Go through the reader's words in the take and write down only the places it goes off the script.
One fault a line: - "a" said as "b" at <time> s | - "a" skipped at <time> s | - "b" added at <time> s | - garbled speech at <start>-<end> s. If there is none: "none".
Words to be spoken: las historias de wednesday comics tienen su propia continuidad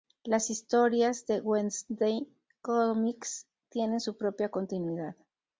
none